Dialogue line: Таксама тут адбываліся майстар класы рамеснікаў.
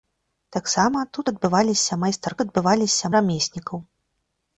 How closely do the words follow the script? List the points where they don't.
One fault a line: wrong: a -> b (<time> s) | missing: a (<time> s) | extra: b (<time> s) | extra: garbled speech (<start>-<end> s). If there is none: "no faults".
wrong: класы -> адбываліся (2.4 s)